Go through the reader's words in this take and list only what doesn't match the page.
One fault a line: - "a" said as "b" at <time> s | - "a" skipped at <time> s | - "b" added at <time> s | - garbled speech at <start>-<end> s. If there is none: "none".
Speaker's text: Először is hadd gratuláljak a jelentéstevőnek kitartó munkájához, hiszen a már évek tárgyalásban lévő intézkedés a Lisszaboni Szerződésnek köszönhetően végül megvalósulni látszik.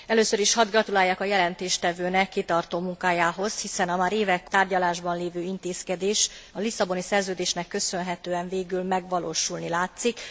none